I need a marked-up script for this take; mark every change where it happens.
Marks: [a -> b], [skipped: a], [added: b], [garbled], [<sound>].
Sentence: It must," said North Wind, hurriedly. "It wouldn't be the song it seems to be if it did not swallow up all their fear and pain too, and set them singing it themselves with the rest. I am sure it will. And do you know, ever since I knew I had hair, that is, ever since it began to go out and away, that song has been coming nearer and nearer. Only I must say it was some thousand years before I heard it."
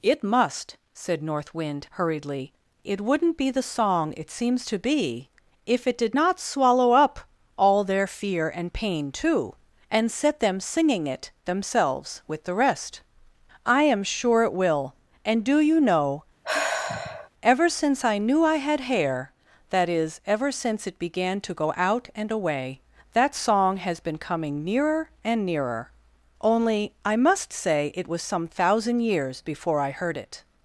It must," said North Wind, hurriedly. "It wouldn't be the song it seems to be if it did not swallow up all their fear and pain too, and set them singing it themselves with the rest. I am sure it will. And do you know, [sigh] ever since I knew I had hair, that is, ever since it began to go out and away, that song has been coming nearer and nearer. Only I must say it was some thousand years before I heard it."